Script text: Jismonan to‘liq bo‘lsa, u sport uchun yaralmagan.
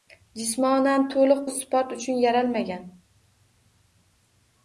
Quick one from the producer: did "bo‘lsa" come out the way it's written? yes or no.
no